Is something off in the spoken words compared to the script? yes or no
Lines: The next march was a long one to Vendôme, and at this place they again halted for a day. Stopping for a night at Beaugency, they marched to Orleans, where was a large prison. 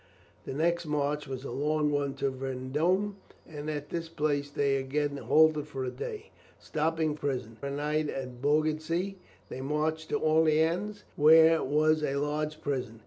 yes